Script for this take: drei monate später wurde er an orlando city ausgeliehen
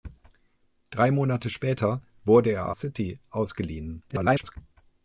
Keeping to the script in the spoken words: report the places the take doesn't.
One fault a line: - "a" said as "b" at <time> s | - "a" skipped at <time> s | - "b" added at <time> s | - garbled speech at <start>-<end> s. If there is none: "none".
- "an orlando" skipped at 2.7 s
- garbled speech at 4.1-4.6 s